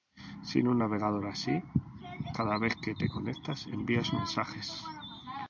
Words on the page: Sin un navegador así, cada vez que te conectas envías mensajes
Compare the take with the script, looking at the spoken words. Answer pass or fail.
pass